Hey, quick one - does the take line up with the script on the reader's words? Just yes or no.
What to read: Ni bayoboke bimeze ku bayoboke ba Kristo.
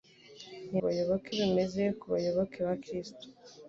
yes